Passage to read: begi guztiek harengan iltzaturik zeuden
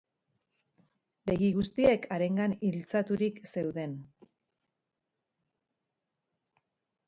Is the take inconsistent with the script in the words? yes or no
no